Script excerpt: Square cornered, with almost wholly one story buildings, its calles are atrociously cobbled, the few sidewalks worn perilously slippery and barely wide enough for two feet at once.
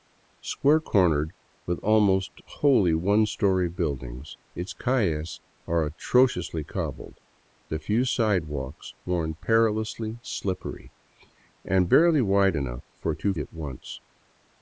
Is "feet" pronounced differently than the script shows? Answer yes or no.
yes